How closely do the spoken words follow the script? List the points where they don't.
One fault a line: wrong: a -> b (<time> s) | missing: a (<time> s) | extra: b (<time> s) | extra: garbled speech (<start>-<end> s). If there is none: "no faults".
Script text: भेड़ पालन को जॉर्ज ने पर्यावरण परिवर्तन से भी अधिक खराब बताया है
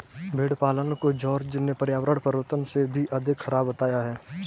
no faults